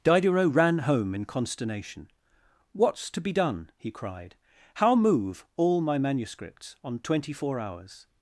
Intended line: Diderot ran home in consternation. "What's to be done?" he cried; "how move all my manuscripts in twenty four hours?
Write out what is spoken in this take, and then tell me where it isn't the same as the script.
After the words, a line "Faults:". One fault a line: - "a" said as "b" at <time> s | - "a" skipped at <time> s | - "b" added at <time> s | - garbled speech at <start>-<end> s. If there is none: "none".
Diderot ran home in consternation. "What's to be done?" he cried; "how move all my manuscripts on twenty four hours?
Faults:
- "in" said as "on" at 6.8 s